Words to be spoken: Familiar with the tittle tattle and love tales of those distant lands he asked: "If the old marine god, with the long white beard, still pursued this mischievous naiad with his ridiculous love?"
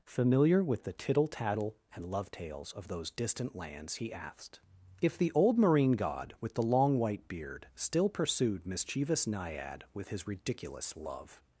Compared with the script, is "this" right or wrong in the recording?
wrong